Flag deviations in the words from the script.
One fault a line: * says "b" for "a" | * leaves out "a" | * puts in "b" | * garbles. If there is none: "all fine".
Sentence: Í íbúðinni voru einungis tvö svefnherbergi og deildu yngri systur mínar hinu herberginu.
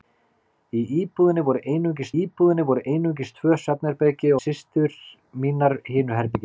* says "íbúðinni voru einungis tvö svefnherbergi" for "tvö svefnherbergi og deildu yngri"